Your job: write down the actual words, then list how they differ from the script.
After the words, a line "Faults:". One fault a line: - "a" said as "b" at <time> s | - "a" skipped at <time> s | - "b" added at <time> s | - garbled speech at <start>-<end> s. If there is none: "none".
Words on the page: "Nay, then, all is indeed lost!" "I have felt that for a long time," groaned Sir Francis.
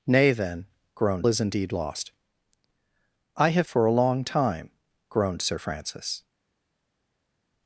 "Nay, then, groaned is indeed lost!" "I have for a long time," groaned Sir Francis.
Faults:
- "all" said as "groaned" at 0.9 s
- "felt that" skipped at 3.7 s